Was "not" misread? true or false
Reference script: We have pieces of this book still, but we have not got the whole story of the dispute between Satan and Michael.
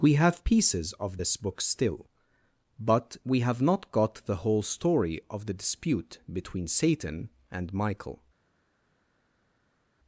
false